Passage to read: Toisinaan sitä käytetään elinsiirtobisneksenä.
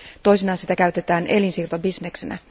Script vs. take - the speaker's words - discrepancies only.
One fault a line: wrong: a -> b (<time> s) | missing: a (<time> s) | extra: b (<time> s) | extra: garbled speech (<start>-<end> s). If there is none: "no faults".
no faults